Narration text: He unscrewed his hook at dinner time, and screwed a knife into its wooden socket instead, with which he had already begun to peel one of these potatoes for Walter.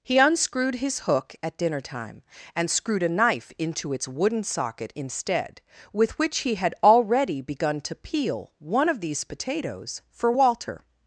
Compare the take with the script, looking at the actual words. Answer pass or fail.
pass